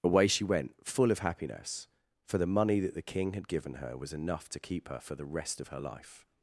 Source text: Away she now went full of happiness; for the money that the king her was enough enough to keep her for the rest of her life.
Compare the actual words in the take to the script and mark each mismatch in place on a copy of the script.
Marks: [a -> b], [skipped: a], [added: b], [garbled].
Away she [skipped: now] went full of happiness; for the money that the king [added: had given] her was enough [skipped: enough] to keep her for the rest of her life.